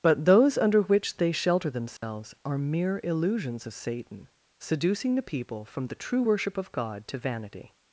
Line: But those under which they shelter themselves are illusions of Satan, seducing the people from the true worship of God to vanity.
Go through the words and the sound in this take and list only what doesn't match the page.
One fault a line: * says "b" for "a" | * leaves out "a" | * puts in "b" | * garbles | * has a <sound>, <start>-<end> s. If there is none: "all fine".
* has a dropout, 2.0-2.0 s
* puts in "mere"